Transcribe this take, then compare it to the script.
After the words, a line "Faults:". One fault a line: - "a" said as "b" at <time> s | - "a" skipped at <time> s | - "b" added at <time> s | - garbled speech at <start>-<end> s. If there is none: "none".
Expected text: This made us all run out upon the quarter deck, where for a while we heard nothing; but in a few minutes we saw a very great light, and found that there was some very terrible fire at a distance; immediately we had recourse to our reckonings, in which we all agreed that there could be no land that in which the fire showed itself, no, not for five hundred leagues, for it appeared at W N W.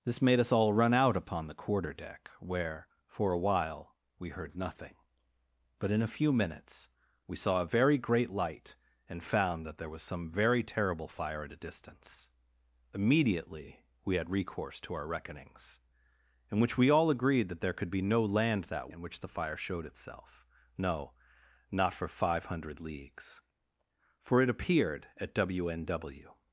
This made us all run out upon the quarter deck, where for a while we heard nothing; but in a few minutes we saw a very great light, and found that there was some very terrible fire at a distance; immediately we had recourse to our reckonings, in which we all agreed that there could be no land that in which the fire showed itself, no, not for five hundred leagues, for it appeared at W N W.
Faults:
none